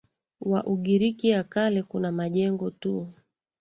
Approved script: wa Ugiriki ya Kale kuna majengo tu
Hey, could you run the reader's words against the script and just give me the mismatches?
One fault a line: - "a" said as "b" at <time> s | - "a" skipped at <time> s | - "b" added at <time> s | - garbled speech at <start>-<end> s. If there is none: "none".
none